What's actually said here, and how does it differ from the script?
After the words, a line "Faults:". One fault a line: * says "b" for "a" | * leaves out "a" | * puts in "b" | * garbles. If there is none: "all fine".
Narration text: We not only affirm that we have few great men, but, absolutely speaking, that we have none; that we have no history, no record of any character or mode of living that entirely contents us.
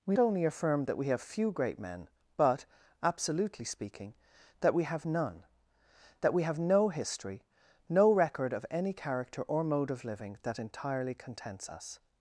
We only affirm that we have few great men, but, absolutely speaking, that we have none; that we have no history, no record of any character or mode of living that entirely contents us.
Faults:
* leaves out "not"